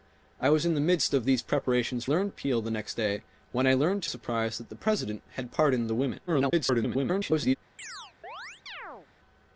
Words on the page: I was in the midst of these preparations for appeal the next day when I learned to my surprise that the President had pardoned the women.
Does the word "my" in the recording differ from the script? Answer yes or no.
yes